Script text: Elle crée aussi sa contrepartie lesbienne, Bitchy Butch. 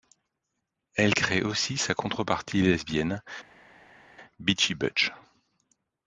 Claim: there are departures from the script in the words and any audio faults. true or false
false